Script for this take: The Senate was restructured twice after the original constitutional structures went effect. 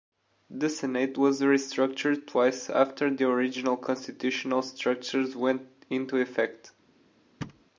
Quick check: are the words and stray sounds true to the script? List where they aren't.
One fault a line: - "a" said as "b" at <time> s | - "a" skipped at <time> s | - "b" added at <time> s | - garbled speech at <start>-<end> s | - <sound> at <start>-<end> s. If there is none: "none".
- "into" added at 5.9 s
- thud at 7.4-7.6 s